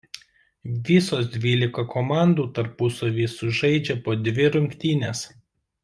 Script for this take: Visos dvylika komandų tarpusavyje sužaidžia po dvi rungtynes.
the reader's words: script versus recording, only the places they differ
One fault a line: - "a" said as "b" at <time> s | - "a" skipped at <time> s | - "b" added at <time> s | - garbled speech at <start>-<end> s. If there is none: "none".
none